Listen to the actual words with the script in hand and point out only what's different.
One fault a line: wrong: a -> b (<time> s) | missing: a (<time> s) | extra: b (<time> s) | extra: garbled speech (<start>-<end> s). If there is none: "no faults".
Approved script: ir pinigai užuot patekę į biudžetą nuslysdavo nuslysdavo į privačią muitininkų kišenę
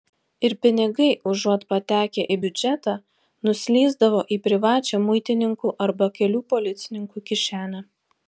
missing: nuslysdavo (4.2 s)
extra: arba kelių policininkų (5.9 s)